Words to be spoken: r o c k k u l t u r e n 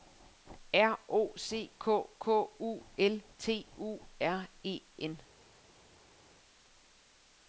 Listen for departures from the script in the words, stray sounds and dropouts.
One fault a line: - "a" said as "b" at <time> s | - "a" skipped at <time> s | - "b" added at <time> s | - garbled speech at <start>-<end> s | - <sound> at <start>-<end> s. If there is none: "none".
none